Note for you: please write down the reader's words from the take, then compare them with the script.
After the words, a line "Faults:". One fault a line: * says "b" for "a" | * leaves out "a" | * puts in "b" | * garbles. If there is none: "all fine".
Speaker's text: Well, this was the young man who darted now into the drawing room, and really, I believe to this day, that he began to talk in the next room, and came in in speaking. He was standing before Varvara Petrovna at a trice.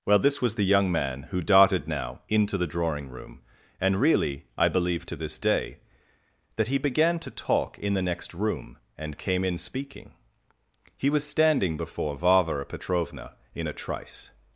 Well, this was the young man who darted now into the drawing room, and really, I believe to this day, that he began to talk in the next room, and came in speaking. He was standing before Varvara Petrovna in a trice.
Faults:
* leaves out "in"
* says "in" for "at"